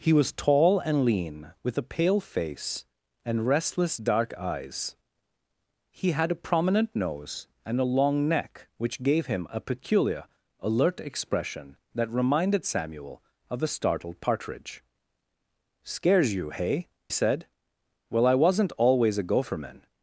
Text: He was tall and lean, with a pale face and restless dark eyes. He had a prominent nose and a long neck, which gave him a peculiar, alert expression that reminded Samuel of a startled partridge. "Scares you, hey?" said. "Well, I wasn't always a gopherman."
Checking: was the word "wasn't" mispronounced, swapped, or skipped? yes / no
no